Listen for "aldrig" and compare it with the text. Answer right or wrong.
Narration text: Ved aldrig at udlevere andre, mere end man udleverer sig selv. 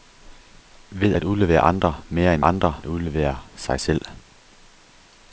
wrong